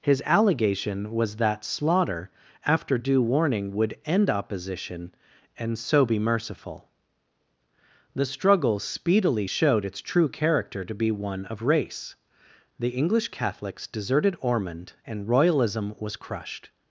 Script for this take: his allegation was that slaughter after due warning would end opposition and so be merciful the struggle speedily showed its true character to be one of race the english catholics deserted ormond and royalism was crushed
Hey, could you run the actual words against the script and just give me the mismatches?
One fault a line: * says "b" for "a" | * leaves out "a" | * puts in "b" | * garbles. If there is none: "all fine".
all fine